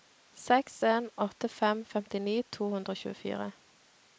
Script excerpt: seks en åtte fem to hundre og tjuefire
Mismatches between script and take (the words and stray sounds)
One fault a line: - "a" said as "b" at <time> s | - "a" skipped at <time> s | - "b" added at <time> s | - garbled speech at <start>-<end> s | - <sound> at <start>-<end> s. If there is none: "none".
- "femtini" added at 1.9 s